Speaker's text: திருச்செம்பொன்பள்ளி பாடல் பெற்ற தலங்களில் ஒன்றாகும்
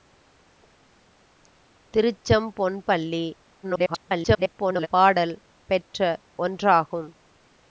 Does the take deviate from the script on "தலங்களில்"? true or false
true